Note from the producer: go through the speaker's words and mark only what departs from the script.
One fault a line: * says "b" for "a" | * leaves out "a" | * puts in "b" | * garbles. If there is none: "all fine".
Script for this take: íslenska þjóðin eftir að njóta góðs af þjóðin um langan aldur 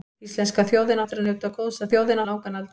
all fine